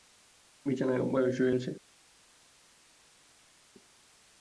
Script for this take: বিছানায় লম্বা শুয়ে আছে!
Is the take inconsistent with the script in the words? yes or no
yes